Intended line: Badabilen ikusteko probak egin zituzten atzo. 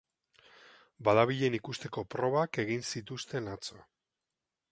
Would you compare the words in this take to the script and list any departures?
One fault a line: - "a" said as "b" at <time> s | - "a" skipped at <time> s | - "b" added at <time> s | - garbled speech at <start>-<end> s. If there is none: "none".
none